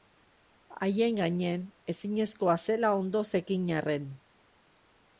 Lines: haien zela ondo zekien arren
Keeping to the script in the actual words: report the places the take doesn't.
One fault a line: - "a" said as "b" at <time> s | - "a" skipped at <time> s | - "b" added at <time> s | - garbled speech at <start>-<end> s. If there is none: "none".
- "gainean ezinezkoa" added at 1.2 s